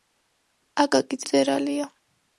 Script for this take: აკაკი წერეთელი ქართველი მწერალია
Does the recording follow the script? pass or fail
fail